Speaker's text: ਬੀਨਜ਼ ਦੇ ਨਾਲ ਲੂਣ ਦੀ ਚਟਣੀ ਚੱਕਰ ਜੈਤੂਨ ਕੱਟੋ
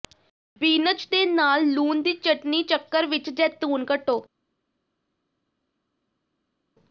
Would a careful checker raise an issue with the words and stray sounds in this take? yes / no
yes